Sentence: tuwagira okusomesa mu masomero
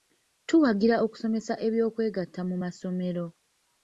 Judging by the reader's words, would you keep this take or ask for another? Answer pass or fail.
fail